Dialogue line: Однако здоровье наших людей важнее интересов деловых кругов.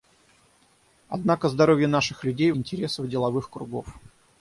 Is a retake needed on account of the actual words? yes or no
yes